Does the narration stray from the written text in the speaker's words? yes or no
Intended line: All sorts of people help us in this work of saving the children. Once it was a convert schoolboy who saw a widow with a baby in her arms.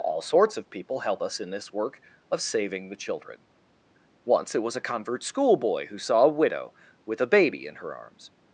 no